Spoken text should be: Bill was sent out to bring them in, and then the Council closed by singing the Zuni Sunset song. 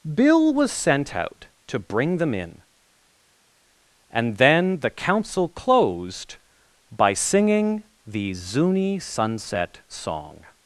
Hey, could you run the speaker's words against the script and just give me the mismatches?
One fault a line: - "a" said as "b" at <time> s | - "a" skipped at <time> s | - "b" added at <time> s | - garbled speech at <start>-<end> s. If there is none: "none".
none